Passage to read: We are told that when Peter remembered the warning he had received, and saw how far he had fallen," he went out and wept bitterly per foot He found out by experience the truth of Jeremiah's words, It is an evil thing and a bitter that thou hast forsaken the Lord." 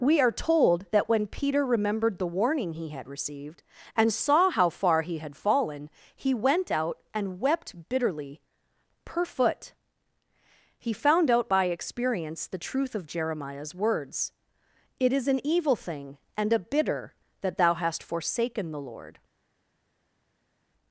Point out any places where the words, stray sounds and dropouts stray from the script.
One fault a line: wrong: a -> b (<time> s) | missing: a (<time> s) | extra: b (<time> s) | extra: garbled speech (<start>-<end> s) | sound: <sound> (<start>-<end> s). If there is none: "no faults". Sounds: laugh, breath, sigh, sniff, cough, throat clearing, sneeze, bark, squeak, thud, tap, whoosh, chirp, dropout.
no faults